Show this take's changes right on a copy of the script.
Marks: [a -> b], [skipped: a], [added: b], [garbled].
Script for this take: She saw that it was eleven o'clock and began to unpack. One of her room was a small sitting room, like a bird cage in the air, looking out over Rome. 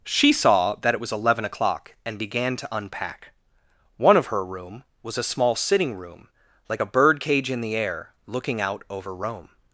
She saw that it was eleven o'clock and began to unpack. One of her room was a small sitting room, like a bird cage in the air, looking out over Rome.